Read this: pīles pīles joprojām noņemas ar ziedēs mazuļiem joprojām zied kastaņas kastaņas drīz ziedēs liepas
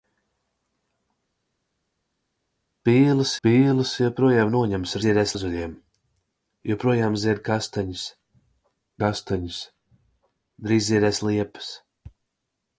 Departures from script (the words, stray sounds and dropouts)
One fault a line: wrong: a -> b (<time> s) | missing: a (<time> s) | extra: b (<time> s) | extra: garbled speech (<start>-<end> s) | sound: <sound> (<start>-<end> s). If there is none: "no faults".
no faults